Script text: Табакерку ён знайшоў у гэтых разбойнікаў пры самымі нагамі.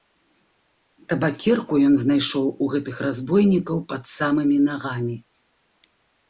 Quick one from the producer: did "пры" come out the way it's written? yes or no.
no